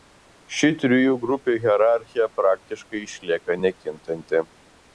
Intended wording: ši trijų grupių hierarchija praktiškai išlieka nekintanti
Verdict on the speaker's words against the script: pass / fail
pass